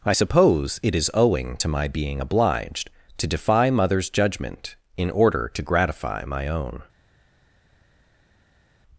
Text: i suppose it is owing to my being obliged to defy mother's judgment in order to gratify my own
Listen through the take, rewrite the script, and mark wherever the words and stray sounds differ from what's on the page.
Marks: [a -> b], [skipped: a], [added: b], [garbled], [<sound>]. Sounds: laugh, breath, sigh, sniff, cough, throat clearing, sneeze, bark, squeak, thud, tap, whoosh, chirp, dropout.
i suppose it is owing to my being obliged to defy mother's judgment in order to gratify my own